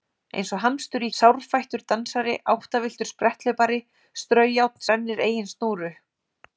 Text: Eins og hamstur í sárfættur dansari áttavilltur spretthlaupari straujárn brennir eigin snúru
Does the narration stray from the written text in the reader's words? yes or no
no